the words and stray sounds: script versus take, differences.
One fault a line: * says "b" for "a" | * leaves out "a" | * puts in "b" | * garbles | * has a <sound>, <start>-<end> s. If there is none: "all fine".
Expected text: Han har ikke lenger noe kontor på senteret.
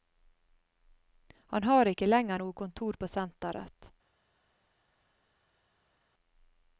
all fine